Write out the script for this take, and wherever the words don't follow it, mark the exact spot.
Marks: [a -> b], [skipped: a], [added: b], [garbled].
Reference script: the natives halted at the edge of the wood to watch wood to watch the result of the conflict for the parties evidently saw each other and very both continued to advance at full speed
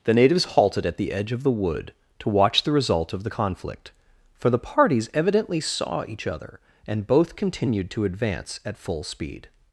the natives halted at the edge of the wood to watch [skipped: wood to watch] the result of the conflict for the parties evidently saw each other and [skipped: very] both continued to advance at full speed